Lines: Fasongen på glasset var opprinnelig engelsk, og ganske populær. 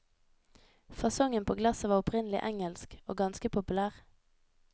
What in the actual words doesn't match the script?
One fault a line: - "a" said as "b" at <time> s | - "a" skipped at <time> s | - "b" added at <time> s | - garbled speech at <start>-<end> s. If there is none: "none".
none